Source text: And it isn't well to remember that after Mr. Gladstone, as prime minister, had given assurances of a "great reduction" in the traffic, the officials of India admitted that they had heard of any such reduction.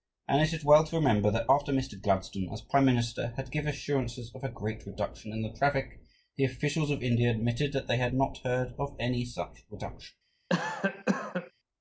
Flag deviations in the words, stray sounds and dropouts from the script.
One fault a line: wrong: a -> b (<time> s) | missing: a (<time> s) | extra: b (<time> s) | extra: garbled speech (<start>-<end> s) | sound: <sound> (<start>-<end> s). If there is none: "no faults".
wrong: isn't -> is (0.5 s)
extra: not (8.1 s)
sound: cough (10.5-11.5 s)